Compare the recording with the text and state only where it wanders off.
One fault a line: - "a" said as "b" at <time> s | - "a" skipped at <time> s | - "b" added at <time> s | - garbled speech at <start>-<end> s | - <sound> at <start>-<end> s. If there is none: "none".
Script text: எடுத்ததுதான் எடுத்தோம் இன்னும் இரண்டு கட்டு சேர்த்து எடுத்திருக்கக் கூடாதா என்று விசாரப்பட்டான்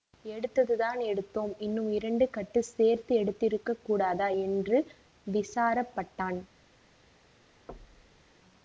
- thud at 7.7-8.3 s